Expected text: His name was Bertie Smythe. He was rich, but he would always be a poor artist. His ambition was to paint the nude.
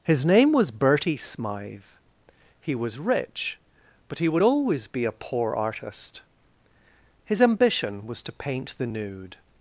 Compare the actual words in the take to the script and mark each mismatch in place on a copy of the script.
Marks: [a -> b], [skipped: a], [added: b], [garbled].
His name was Bertie Smythe. He was rich, but he would always be a poor artist. His ambition was to paint the nude.